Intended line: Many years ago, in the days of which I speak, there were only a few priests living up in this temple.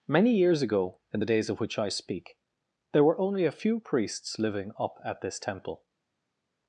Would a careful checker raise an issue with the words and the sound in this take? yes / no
yes